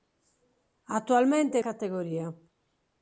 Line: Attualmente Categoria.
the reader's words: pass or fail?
pass